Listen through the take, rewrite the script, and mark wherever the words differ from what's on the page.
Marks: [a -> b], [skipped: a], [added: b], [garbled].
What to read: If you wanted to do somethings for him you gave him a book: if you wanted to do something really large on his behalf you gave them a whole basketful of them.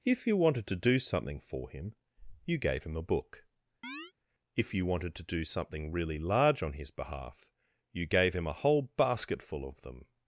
If you wanted to do [somethings -> something] for him you gave him a book: if you wanted to do something really large on his behalf you gave [them -> him] a whole basketful of them.